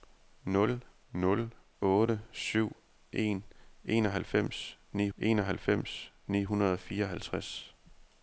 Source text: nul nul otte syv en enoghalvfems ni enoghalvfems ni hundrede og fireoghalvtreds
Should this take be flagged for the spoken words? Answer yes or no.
no